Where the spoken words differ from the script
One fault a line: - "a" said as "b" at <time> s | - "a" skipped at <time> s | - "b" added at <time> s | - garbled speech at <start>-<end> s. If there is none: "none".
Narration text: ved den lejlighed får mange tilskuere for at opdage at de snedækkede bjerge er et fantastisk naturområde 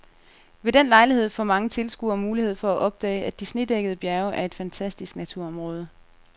- "mulighed" added at 2.2 s